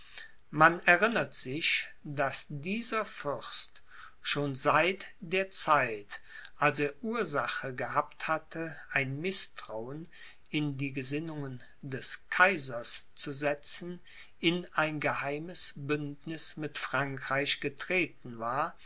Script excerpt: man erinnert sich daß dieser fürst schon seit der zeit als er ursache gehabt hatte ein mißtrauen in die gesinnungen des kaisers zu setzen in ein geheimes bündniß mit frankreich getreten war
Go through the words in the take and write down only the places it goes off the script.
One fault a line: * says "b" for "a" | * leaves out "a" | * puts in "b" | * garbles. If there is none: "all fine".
all fine